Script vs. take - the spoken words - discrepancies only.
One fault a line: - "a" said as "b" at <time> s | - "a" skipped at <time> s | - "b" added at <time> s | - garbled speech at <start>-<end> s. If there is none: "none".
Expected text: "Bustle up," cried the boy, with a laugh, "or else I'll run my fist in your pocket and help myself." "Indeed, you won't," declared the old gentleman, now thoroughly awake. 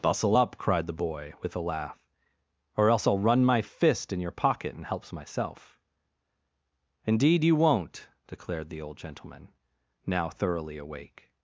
- "help" said as "helps" at 4.8 s